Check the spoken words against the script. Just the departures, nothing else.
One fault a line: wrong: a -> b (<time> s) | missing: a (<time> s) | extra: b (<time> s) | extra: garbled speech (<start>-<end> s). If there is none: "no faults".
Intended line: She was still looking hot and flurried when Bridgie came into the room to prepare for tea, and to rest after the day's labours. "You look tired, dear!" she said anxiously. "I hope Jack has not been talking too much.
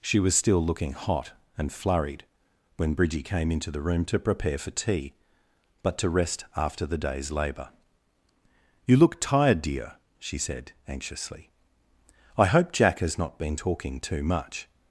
wrong: and -> but (5.8 s)
wrong: labours -> labour (7.3 s)